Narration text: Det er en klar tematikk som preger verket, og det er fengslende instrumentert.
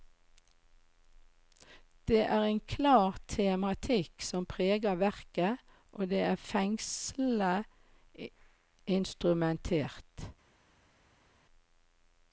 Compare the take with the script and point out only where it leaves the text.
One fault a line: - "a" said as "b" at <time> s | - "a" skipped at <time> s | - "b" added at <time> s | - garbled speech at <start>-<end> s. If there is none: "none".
none